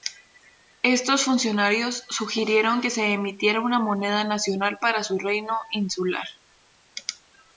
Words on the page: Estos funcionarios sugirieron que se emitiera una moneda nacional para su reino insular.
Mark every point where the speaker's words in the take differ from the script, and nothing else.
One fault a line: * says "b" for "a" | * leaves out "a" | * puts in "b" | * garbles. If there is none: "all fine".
all fine